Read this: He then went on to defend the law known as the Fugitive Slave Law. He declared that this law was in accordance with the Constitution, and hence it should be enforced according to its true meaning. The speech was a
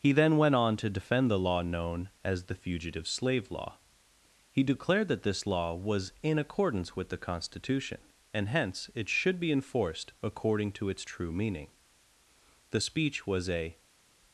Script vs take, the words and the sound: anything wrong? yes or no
no